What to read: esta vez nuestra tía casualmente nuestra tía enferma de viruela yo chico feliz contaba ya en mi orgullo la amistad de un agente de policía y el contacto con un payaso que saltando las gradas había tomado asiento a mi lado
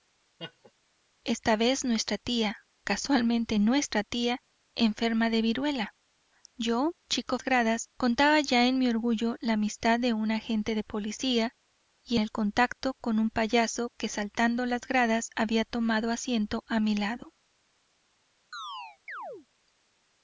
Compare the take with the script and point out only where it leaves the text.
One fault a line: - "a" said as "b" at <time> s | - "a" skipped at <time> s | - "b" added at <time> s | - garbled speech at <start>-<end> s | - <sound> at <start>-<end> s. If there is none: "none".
- laugh at 0.4-0.7 s
- "feliz" said as "gradas" at 7.4 s
- chirp at 18.5-19.5 s